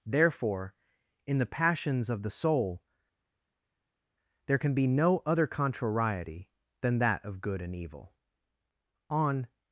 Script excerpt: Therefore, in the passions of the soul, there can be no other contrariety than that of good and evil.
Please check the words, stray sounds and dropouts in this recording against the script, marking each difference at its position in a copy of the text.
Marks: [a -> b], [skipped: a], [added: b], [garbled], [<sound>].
Therefore, in the passions of the soul, there can be no other contrariety than that of good and evil. [added: On]